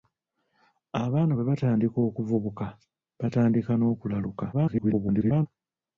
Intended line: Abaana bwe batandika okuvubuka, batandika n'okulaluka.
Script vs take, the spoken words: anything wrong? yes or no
yes